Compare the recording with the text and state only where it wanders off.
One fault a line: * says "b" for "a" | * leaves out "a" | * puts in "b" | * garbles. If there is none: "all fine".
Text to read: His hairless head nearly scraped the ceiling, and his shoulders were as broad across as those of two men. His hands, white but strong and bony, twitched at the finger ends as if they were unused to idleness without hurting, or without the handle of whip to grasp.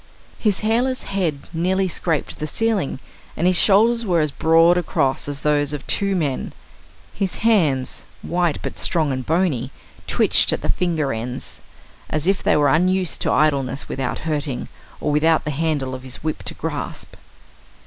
* puts in "his"